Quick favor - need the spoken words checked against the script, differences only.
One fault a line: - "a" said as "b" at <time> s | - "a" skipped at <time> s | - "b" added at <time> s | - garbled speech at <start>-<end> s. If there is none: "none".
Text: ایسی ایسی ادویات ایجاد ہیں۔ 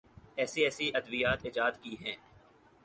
- "کی" added at 1.8 s